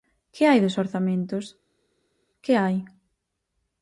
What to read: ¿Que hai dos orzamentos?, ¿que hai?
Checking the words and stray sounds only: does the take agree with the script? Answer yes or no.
yes